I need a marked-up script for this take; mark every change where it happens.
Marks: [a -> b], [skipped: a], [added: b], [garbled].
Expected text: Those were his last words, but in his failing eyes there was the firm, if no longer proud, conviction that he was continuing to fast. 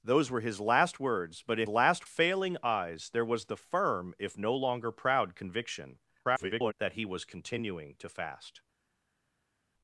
Those were his last words, but in [his -> last] failing eyes there was the firm, if no longer proud, conviction [garbled] that he was continuing to fast.